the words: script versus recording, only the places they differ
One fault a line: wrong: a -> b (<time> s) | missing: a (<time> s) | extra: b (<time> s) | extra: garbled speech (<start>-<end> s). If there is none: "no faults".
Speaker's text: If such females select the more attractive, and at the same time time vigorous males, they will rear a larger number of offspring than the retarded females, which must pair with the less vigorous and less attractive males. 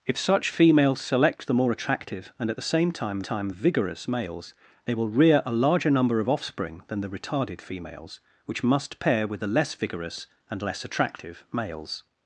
no faults